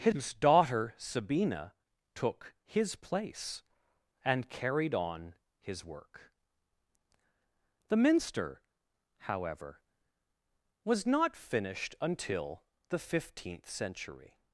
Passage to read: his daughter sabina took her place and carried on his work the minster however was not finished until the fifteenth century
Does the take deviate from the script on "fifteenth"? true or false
false